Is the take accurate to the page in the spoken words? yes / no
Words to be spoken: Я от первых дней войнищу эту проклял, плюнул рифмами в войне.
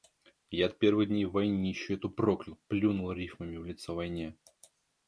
no